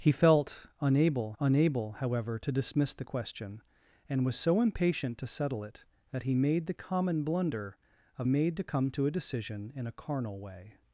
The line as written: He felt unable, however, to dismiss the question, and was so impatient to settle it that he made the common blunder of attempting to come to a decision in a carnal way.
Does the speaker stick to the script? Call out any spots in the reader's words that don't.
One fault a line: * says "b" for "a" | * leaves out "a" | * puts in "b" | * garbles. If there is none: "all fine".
* puts in "unable"
* says "made" for "attempting"